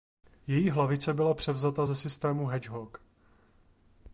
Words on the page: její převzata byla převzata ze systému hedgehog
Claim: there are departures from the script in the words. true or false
true